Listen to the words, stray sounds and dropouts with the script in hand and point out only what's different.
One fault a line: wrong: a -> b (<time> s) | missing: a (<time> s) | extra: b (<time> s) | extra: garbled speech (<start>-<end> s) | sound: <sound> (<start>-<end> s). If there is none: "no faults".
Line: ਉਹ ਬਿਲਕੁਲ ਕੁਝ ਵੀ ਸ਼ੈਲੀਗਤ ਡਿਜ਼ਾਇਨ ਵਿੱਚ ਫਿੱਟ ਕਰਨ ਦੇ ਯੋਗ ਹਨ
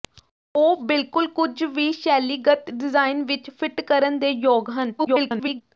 extra: garbled speech (5.0-5.6 s)